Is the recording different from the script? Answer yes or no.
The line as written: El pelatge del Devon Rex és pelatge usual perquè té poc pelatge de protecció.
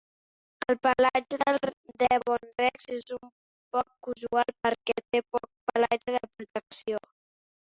yes